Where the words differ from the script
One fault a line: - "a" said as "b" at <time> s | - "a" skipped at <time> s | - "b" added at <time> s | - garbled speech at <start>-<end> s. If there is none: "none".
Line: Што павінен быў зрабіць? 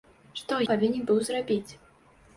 none